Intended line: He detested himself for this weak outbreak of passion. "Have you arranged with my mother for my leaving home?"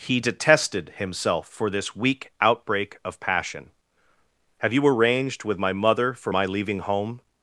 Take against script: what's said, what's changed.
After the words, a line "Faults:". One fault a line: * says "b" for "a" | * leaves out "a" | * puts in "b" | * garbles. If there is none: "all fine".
He detested himself for this weak outbreak of passion. "Have you arranged with my mother for my leaving home?"
Faults:
all fine